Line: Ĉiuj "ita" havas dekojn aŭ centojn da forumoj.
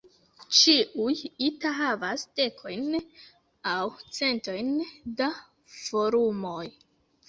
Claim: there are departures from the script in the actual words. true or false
false